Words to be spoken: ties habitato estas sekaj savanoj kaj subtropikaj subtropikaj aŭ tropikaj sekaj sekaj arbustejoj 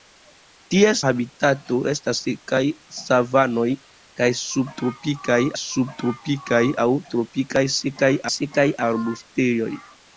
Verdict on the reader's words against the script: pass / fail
pass